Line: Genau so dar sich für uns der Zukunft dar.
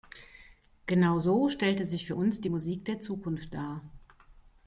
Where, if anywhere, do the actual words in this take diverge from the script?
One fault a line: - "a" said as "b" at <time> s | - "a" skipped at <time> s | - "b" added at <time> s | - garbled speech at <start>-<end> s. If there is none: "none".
- "dar" said as "stellte" at 1.5 s
- "die Musik" added at 2.4 s